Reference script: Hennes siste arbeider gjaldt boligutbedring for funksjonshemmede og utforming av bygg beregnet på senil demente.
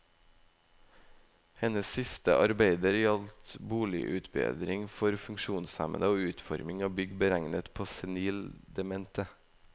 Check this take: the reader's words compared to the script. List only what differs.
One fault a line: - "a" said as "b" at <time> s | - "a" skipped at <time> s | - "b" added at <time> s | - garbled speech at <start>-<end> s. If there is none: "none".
none